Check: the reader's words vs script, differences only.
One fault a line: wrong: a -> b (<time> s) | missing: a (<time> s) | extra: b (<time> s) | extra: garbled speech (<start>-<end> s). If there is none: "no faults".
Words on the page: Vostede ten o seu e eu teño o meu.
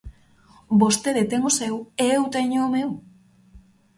no faults